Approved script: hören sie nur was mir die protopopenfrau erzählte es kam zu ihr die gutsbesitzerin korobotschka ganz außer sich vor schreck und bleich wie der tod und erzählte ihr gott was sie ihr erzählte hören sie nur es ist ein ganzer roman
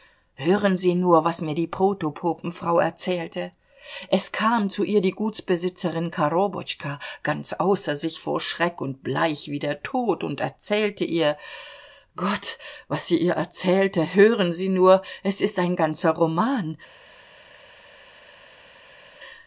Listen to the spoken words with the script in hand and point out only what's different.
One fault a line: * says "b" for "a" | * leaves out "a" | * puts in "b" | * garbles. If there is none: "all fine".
all fine